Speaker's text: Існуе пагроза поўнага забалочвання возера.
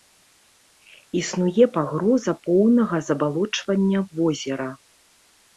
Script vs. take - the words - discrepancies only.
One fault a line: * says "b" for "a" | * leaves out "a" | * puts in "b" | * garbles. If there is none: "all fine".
all fine